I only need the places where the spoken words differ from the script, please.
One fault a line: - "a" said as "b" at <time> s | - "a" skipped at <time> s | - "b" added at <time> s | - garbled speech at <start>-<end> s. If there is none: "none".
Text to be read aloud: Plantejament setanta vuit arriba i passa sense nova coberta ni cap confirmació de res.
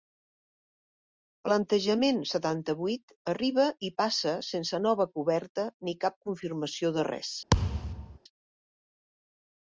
none